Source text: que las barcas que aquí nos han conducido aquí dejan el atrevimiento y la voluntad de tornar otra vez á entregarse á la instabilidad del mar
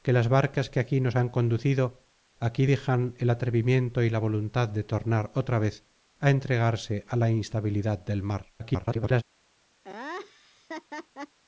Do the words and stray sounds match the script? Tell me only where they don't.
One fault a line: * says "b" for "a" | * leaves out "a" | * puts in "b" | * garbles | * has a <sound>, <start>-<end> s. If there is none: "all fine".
* garbles
* has a laugh, 9.8-11.4 s